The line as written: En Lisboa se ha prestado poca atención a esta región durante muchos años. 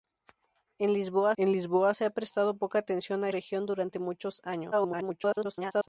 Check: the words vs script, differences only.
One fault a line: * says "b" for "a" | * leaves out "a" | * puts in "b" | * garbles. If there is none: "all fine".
* puts in "en Lisboa"
* leaves out "esta"
* garbles